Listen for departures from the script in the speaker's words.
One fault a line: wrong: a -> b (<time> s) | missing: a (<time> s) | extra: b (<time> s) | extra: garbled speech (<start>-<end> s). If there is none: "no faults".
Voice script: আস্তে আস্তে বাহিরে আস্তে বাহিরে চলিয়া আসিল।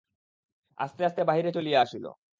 missing: আস্তে বাহিরে (1.5 s)